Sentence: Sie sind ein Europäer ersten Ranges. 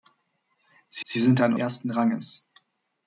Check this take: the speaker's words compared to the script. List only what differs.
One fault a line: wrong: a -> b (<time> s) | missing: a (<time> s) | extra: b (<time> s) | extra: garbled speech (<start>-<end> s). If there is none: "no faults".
extra: sie (1.0 s)
missing: Europäer (1.6 s)